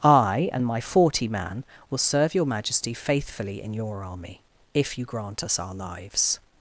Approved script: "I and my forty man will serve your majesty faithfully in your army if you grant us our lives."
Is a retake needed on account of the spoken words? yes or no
no